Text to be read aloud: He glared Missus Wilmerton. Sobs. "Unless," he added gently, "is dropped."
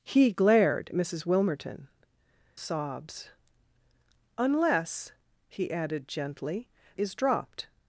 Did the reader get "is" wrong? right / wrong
right